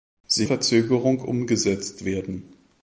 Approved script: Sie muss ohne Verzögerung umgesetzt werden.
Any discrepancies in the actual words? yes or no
yes